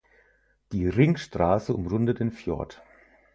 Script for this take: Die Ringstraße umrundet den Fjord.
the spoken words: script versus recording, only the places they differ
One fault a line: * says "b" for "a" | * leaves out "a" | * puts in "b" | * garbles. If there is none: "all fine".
all fine